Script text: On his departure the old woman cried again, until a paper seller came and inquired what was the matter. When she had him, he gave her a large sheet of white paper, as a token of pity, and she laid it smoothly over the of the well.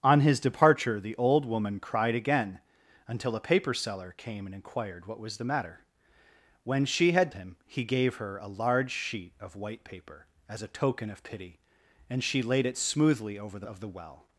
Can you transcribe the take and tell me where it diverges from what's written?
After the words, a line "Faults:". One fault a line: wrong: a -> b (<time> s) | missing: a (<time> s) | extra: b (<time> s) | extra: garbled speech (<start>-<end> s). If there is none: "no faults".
On his departure the old woman cried again, until a paper seller came and inquired what was the matter. When she had him, he gave her a large sheet of white paper, as a token of pity, and she laid it smoothly over the of the well.
Faults:
no faults